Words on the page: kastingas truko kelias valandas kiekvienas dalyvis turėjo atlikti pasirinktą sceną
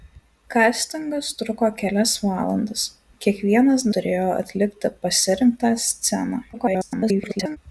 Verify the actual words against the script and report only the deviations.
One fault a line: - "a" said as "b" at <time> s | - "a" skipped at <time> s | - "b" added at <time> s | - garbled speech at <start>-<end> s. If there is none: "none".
- "dalyvis" skipped at 3.9 s
- garbled speech at 6.5-7.6 s